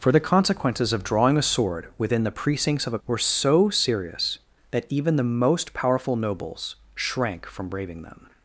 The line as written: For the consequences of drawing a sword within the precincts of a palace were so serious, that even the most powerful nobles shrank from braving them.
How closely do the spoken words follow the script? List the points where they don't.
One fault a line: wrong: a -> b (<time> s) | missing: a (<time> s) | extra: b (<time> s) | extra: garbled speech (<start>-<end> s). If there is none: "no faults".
missing: palace (3.0 s)